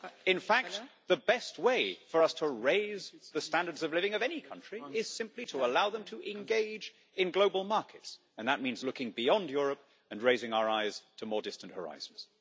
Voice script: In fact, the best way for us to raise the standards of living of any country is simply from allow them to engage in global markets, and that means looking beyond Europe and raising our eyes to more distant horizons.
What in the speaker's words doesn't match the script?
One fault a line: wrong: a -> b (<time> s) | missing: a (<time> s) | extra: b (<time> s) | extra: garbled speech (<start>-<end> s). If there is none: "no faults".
wrong: from -> to (5.5 s)